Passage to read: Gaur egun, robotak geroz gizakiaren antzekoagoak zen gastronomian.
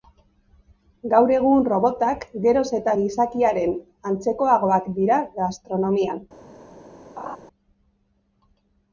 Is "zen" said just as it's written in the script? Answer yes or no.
no